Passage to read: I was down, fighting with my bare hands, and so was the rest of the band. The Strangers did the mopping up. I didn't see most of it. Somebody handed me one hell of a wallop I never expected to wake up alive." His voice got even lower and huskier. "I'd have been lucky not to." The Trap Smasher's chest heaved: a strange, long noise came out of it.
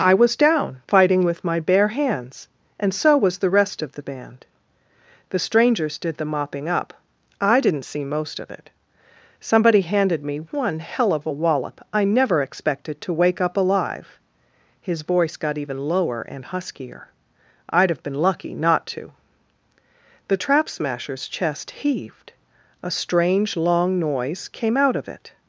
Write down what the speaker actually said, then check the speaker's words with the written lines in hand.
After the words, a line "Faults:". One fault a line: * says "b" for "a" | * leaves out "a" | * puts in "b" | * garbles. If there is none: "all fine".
I was down, fighting with my bare hands, and so was the rest of the band. The Strangers did the mopping up. I didn't see most of it. Somebody handed me one hell of a wallop I never expected to wake up alive." His voice got even lower and huskier. "I'd have been lucky not to." The Trap Smasher's chest heaved: a strange, long noise came out of it.
Faults:
all fine